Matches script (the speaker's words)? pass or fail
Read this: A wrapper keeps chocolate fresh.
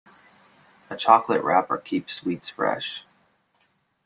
fail